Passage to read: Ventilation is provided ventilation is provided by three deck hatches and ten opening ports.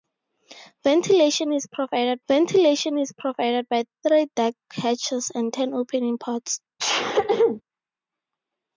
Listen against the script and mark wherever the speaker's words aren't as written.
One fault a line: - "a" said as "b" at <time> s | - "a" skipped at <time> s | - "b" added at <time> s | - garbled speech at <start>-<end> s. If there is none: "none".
none